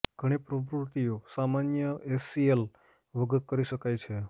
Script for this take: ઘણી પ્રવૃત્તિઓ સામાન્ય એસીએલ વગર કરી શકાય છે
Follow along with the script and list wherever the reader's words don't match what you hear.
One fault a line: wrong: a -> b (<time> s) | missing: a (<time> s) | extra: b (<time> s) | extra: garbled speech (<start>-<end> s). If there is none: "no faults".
no faults